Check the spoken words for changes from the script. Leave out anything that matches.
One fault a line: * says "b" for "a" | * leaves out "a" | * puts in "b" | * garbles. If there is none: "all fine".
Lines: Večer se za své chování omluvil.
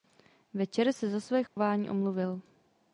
all fine